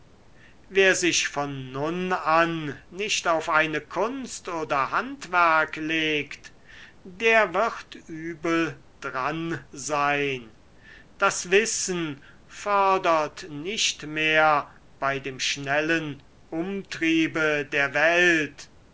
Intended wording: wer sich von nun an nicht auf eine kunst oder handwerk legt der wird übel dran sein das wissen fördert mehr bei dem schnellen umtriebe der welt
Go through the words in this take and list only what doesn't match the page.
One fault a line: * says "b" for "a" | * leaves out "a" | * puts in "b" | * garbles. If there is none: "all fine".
* puts in "nicht"